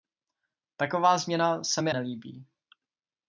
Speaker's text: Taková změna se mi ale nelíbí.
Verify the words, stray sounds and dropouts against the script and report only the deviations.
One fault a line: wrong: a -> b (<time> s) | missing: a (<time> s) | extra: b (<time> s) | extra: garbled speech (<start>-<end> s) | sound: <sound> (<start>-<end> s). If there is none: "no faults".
missing: ale (1.9 s)